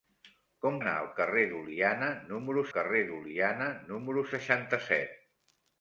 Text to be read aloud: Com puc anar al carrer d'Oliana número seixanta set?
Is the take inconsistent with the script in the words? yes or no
yes